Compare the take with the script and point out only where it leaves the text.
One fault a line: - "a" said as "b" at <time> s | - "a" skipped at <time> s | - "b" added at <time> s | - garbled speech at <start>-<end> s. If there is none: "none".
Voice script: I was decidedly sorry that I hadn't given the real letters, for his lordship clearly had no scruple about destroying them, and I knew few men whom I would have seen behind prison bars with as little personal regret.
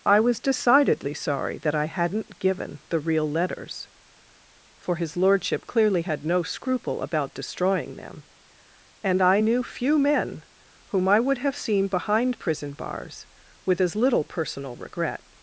none